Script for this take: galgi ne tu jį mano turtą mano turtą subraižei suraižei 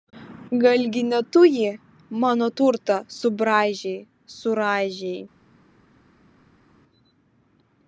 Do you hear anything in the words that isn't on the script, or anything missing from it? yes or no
yes